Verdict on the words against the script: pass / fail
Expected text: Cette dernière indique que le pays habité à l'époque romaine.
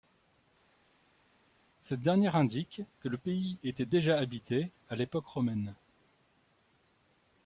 fail